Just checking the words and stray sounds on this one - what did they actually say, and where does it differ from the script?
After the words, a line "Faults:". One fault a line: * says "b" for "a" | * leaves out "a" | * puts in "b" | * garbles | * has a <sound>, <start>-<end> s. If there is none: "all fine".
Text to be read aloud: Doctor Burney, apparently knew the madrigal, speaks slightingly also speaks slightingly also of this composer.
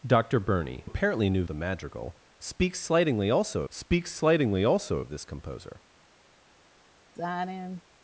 Doctor Burney, apparently knew the madrigal, speaks slightingly also speaks slightingly also of this composer.
Faults:
* has a sigh, 7.2-7.8 s